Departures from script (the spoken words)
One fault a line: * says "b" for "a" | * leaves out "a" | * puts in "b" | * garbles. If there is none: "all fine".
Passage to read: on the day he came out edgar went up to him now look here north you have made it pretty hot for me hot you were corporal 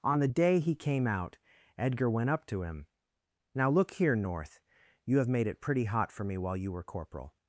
* says "while" for "hot"